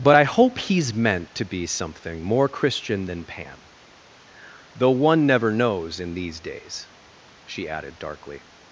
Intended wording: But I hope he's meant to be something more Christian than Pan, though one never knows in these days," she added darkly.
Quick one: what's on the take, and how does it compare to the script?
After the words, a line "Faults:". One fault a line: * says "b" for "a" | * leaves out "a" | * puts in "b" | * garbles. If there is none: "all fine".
But I hope he's meant to be something more Christian than Pan, though one never knows in these days," she added darkly.
Faults:
all fine